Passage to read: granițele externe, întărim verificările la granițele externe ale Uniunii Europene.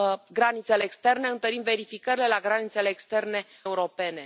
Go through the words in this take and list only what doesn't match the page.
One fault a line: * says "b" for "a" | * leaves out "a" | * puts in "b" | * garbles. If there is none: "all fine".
* leaves out "ale Uniunii"